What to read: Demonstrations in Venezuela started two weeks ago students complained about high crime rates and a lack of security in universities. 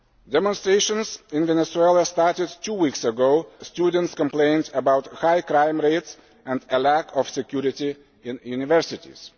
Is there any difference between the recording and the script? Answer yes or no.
no